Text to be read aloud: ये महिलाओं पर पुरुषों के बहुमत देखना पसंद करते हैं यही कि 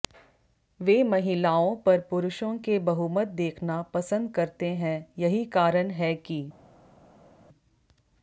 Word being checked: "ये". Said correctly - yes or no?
no